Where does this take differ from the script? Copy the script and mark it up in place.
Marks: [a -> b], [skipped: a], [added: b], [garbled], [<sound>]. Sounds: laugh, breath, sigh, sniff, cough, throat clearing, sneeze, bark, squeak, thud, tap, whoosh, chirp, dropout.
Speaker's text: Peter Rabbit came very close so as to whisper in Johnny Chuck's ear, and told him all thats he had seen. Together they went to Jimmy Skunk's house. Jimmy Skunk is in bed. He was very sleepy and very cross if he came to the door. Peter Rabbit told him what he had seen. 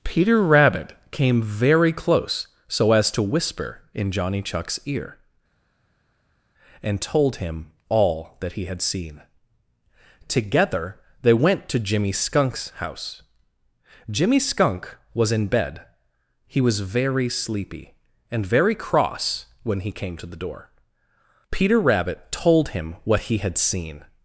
Peter Rabbit came very close so as to whisper in Johnny Chuck's ear, and told him all [thats -> that] he had seen. Together they went to Jimmy Skunk's house. Jimmy Skunk [is -> was] in bed. He was very sleepy and very cross [if -> when] he came to the door. Peter Rabbit told him what he had seen.